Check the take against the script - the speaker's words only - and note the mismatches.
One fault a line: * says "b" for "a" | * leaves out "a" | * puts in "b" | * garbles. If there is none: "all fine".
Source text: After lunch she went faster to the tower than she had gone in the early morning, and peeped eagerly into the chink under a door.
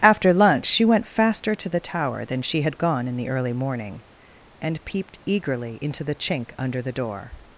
* says "the" for "a"